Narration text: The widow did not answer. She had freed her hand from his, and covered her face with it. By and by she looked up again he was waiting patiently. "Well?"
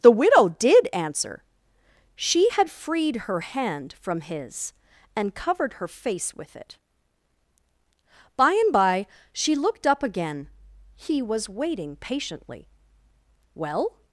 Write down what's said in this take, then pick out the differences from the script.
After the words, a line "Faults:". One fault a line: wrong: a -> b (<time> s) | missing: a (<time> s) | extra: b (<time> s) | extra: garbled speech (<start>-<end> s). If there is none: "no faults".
The widow did answer. She had freed her hand from his, and covered her face with it. By and by she looked up again he was waiting patiently. "Well?"
Faults:
missing: not (0.9 s)